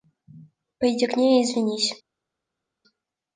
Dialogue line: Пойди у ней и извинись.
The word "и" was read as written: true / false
true